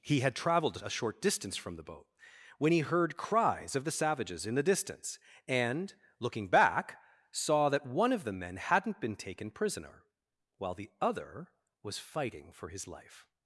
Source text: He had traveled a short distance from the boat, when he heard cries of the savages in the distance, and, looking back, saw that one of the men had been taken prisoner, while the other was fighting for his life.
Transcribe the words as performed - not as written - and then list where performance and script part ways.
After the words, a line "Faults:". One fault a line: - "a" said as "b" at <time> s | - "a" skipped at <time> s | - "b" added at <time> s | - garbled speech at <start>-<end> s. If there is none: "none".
He had traveled a short distance from the boat, when he heard cries of the savages in the distance, and, looking back, saw that one of the men hadn't been taken prisoner, while the other was fighting for his life.
Faults:
- "had" said as "hadn't" at 8.6 s